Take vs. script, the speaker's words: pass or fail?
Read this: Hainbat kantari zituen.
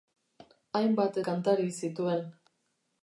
pass